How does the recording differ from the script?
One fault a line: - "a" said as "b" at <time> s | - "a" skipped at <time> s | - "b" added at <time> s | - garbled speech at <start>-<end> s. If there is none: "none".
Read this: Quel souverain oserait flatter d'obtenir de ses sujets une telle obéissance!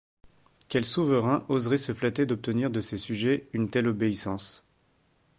- "se" added at 1.8 s